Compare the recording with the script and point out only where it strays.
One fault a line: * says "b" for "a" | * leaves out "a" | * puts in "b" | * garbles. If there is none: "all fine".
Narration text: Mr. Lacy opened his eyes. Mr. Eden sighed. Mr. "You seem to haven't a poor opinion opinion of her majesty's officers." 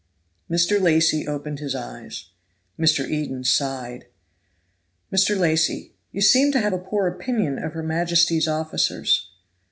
* puts in "Lacy"
* says "have" for "haven't"
* leaves out "opinion"